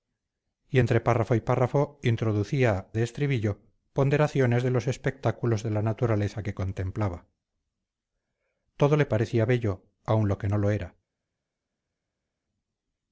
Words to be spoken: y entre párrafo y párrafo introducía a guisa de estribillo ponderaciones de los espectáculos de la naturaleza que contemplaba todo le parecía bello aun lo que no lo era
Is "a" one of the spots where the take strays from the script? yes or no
yes